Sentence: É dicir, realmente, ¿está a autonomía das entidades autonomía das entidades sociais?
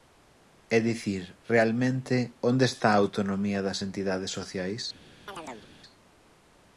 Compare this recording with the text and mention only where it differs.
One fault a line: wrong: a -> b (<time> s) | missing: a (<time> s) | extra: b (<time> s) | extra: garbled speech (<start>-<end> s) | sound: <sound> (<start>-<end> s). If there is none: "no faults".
extra: onde (2.5 s)
missing: autonomía das entidades (4.3 s)
sound: chirp (5.3-5.7 s)